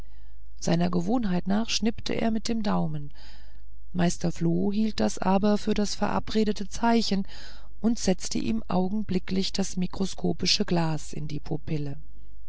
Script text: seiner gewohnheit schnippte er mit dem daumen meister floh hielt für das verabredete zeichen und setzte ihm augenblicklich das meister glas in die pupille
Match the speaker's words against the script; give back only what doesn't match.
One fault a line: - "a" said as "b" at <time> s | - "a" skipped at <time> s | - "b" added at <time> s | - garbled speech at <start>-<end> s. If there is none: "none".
- "nach" added at 1.5 s
- "das aber" added at 5.0 s
- "meister" said as "mikroskopische" at 9.8 s